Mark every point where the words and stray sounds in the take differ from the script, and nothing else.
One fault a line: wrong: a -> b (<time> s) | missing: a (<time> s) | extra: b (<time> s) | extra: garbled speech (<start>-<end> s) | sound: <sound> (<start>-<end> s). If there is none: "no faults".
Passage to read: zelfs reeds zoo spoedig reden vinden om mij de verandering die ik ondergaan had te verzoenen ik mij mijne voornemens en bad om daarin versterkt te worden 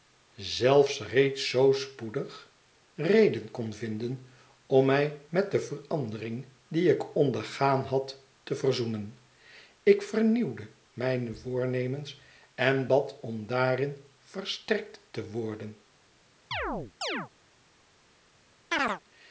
extra: kon (3.5 s)
extra: met (5.3 s)
wrong: mij -> vernieuwde (10.0 s)
sound: chirp (16.5-17.3 s)
sound: chirp (18.7-19.0 s)